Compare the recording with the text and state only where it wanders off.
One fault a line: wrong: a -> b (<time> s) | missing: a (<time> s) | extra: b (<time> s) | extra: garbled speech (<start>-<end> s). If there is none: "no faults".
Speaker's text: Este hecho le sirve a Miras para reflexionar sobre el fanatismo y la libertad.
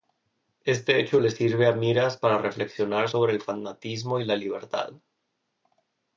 no faults